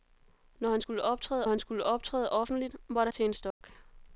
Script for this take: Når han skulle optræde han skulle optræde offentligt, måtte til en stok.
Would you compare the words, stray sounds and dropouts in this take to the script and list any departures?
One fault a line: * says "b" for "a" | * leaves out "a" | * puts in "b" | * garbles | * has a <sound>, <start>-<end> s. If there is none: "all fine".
* has a dropout, 3.5-3.6 s